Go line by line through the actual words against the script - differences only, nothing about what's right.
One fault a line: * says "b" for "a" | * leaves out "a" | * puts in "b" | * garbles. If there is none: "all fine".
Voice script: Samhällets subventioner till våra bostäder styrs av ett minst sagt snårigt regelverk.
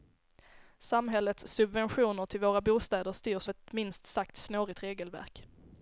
* leaves out "av"